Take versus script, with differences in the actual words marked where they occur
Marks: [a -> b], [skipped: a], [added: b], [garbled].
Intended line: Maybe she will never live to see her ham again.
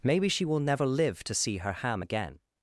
Maybe she will never live to see her ham again.